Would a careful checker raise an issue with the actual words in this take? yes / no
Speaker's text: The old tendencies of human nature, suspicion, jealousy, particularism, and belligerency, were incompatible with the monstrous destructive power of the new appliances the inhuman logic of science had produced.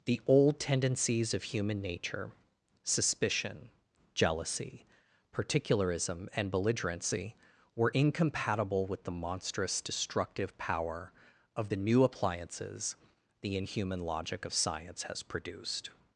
yes